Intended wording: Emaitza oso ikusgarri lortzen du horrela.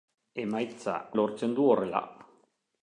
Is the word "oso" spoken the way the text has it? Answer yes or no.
no